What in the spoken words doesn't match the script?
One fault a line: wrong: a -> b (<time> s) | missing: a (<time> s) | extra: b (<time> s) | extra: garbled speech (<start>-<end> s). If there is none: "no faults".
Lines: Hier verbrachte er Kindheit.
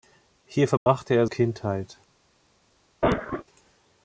no faults